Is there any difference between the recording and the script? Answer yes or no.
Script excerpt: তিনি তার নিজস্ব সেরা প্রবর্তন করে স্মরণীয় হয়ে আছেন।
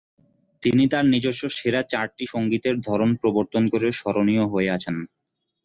yes